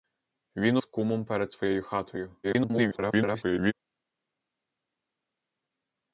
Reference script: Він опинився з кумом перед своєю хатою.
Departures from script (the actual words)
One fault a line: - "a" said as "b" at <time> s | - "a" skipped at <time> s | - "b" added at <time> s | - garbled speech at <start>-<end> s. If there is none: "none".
- "опинився" skipped at 0.8 s
- garbled speech at 2.4-3.7 s